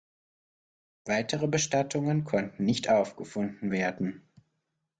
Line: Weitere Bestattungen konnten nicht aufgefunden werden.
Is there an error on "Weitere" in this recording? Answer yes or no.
no